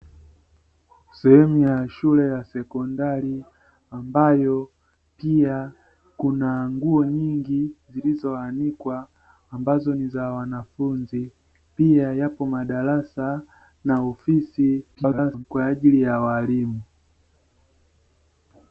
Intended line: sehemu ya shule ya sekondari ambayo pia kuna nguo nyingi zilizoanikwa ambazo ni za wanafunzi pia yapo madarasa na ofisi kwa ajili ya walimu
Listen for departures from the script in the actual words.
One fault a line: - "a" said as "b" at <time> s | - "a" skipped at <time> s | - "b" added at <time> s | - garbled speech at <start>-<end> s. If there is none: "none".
- garbled speech at 14.9-15.4 s